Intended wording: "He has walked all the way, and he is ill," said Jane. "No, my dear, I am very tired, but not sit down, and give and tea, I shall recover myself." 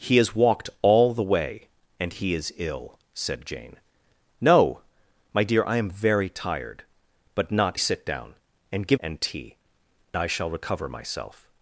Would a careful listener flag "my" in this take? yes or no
no